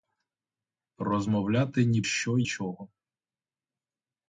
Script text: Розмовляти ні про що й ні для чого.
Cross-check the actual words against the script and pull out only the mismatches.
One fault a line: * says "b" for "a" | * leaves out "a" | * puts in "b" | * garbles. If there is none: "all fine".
* leaves out "про"
* leaves out "ні для"